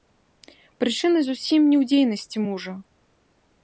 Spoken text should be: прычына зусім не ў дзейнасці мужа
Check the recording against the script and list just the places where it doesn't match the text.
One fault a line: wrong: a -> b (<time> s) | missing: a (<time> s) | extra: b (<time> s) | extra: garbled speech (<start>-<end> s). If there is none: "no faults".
no faults